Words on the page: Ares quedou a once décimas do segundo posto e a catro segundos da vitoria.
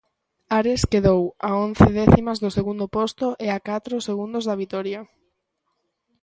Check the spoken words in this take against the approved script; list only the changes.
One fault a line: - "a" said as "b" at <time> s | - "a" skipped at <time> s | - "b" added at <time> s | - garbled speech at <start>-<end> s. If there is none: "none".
none